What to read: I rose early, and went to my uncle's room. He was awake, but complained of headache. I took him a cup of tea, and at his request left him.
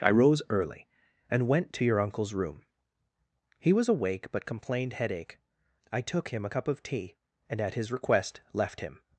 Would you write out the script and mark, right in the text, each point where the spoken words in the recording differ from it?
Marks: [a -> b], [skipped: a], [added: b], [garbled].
I rose early, and went to [my -> your] uncle's room. He was awake, but complained [skipped: of] headache. I took him a cup of tea, and at his request left him.